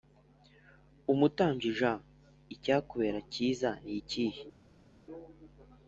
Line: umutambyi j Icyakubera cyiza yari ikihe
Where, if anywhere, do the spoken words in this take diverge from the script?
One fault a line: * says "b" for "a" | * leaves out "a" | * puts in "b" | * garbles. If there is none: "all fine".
* says "ni" for "yari"